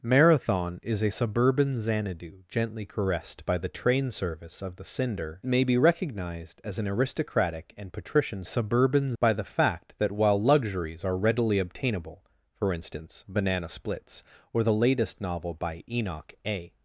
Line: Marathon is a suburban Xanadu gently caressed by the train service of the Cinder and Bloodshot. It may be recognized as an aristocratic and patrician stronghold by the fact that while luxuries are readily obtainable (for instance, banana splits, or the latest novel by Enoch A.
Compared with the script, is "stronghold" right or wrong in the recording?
wrong